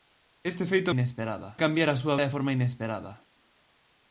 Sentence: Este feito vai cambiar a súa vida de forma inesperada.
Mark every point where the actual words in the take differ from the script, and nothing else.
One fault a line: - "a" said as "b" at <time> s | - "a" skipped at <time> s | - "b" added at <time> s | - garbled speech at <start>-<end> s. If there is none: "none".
- "vai" said as "inesperada" at 0.9 s
- "vida" skipped at 2.2 s